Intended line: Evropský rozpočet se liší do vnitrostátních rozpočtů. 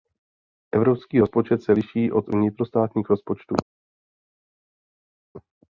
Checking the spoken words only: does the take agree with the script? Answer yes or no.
no